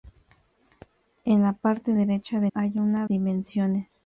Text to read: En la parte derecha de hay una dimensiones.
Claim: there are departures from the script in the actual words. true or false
false